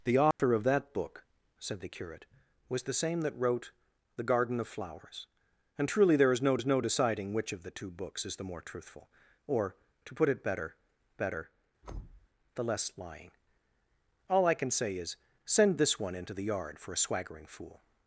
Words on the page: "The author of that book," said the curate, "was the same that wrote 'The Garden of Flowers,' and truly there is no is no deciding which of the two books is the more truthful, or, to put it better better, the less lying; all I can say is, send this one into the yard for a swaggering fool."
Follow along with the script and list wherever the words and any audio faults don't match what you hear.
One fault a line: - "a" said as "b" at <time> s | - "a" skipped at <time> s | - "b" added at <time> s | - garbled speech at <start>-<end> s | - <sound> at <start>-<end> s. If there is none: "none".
- dropout at 0.3-0.4 s
- thud at 11.8-12.3 s